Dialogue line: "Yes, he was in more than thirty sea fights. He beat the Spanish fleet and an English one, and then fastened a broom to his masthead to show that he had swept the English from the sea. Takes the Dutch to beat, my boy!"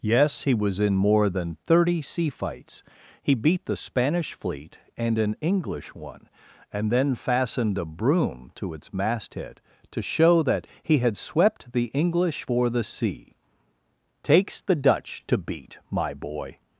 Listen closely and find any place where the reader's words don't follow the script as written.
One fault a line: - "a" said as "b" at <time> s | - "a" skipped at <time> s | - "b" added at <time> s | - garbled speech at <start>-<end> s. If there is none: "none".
- "his" said as "its" at 8.7 s
- "from" said as "for" at 12.4 s